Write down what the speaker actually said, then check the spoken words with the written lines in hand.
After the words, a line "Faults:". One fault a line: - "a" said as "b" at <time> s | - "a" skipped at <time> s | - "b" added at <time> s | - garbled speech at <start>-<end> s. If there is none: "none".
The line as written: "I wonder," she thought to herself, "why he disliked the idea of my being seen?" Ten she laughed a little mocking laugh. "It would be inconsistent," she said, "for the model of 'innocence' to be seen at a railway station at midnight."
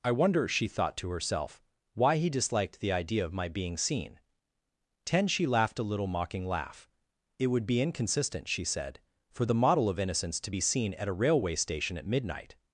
"I wonder," she thought to herself, "why he disliked the idea of my being seen?" Ten she laughed a little mocking laugh. "It would be inconsistent," she said, "for the model of 'innocence' to be seen at a railway station at midnight."
Faults:
none